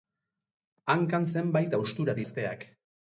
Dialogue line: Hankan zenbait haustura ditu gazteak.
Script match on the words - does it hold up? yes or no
no